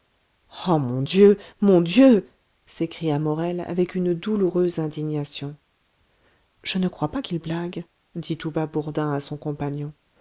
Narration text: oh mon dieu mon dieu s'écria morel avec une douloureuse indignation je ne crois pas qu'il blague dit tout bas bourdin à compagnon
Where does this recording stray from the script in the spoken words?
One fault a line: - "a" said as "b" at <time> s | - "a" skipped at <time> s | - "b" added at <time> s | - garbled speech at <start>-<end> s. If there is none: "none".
- "son" added at 9.2 s